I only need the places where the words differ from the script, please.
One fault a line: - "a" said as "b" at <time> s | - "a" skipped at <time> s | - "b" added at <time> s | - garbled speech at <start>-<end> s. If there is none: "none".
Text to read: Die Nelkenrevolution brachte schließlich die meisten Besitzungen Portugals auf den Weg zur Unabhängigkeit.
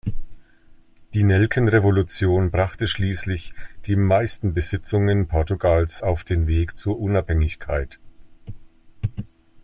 none